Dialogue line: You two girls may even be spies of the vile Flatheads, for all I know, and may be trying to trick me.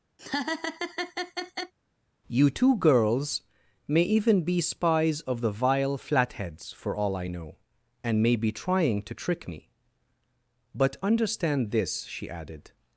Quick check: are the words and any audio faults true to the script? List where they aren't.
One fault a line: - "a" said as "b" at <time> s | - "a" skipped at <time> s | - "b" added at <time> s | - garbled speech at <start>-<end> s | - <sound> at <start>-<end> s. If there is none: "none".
- laugh at 0.2-1.7 s
- "But understand this she added" added at 10.7 s